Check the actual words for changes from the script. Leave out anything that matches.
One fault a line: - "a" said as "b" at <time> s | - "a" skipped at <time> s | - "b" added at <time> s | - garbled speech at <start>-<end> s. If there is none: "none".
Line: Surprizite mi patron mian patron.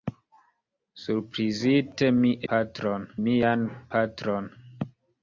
none